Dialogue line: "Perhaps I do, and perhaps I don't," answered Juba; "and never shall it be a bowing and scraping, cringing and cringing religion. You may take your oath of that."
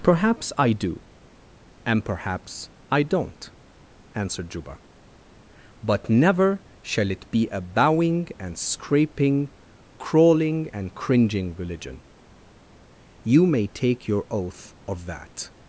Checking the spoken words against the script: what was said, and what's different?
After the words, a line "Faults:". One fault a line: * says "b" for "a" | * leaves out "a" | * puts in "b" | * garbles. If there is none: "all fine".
"Perhaps I do, and perhaps I don't," answered Juba; "but never shall it be a bowing and scraping, crawling and cringing religion. You may take your oath of that."
Faults:
* says "but" for "and"
* says "crawling" for "cringing"